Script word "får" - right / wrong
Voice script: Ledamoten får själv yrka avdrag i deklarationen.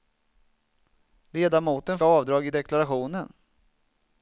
wrong